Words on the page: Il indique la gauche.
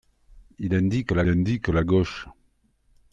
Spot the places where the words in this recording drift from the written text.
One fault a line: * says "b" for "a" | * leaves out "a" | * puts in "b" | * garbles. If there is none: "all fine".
* puts in "indique la"